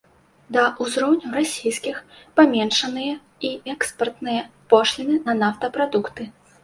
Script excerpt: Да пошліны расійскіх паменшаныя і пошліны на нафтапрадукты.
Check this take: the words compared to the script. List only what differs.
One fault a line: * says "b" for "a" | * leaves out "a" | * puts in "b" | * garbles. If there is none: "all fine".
* says "ўзроўню" for "пошліны"
* puts in "экспартныя"